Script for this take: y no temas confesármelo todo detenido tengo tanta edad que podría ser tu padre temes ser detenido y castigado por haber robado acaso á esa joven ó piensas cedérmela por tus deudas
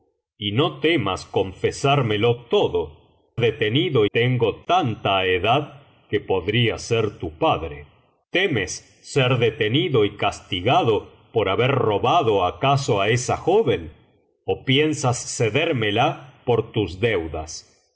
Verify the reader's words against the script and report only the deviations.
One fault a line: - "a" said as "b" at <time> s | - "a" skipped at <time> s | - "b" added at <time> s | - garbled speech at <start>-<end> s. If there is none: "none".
none